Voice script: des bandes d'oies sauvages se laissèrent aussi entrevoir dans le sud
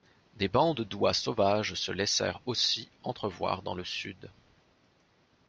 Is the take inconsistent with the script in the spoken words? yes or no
no